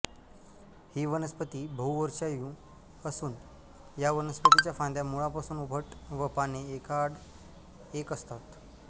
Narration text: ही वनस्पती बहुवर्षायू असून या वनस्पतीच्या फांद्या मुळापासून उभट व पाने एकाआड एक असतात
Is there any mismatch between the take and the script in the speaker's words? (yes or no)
no